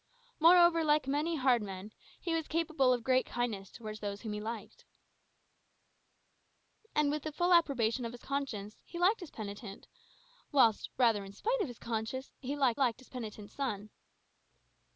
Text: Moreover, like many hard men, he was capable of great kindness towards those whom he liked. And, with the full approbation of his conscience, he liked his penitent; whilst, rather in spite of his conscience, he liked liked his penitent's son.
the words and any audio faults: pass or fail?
pass